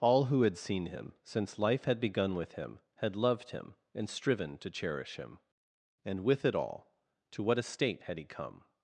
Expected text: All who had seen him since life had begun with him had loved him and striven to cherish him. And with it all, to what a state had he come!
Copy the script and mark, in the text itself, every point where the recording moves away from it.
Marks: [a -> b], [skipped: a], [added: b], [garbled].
All who had seen him since life had begun with him had loved him and striven to cherish him. And with it all, to what a state had he come!